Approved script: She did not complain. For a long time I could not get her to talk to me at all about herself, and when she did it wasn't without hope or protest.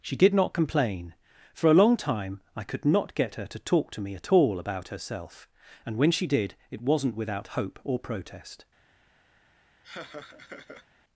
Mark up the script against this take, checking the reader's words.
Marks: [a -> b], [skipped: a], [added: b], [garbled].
She did not complain. For a long time I could not get her to talk to me at all about herself, and when she did it wasn't without hope or protest.